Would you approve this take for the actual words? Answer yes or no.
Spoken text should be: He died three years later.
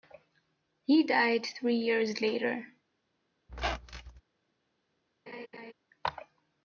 yes